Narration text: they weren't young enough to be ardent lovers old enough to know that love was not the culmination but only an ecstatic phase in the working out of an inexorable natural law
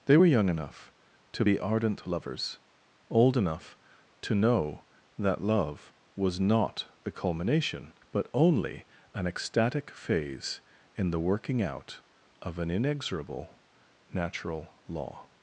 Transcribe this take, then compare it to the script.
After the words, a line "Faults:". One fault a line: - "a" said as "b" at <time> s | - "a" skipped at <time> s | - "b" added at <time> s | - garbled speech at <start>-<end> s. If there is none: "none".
they were young enough to be ardent lovers old enough to know that love was not the culmination but only an ecstatic phase in the working out of an inexorable natural law
Faults:
- "weren't" said as "were" at 0.1 s